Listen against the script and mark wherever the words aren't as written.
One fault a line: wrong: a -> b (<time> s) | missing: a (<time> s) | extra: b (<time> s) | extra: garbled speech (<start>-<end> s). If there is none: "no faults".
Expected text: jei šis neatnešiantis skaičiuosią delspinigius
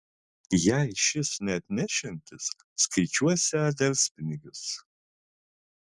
no faults